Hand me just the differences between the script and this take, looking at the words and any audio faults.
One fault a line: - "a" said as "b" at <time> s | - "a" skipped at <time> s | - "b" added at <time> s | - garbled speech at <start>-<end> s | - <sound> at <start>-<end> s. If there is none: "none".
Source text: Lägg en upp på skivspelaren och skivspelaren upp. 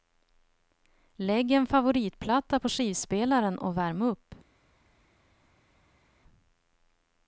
- "upp" said as "favoritplatta" at 1.7 s
- "skivspelaren" said as "värm" at 3.8 s